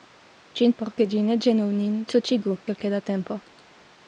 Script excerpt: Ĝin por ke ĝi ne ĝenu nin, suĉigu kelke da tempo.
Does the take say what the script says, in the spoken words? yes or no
yes